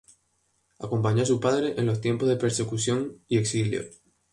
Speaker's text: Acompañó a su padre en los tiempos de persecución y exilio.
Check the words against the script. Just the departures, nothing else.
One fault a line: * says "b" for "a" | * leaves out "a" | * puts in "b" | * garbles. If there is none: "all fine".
all fine